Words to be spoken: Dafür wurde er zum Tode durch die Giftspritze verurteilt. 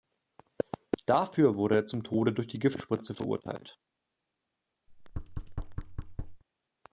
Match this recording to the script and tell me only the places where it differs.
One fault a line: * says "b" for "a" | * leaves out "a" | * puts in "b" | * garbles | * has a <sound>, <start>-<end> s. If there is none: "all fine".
* has a thud, 4.9-6.4 s